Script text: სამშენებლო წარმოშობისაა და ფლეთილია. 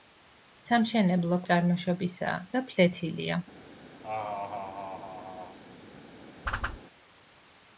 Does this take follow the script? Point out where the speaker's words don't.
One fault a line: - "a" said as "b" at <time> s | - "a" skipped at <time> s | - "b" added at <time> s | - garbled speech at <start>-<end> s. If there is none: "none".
none